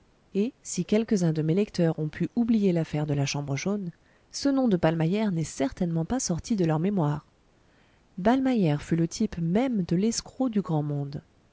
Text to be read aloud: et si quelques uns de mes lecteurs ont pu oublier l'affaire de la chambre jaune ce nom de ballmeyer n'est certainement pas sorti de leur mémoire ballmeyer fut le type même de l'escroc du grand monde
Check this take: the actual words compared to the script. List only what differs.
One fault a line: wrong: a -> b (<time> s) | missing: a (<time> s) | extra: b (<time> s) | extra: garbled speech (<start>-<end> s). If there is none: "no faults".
no faults